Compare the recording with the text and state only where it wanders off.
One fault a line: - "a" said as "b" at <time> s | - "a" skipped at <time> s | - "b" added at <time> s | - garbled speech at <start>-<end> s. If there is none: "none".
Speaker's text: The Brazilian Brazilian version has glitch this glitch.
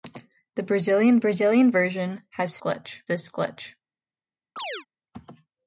none